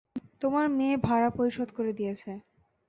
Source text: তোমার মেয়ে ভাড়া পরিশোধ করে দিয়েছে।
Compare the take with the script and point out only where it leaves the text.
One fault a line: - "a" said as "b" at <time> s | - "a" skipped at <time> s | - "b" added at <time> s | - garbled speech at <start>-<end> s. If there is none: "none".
none